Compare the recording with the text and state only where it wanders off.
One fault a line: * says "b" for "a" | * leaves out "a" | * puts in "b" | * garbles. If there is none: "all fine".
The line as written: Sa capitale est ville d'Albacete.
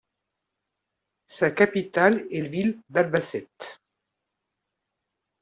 all fine